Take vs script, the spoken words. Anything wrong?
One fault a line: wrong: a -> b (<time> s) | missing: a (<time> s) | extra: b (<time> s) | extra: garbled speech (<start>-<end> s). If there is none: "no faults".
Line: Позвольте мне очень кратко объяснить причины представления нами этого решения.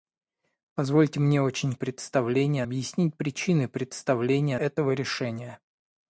wrong: кратко -> представления (1.7 s)
missing: нами (4.6 s)